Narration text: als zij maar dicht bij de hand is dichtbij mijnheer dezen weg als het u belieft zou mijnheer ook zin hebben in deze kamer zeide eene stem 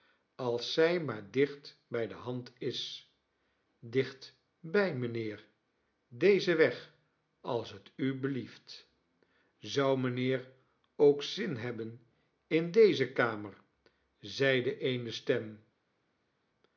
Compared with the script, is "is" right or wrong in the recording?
right